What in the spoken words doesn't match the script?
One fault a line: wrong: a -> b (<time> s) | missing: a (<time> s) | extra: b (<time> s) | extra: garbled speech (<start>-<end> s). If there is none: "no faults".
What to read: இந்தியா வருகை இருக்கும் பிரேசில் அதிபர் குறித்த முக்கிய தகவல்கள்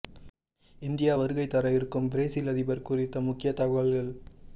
extra: தர (1.5 s)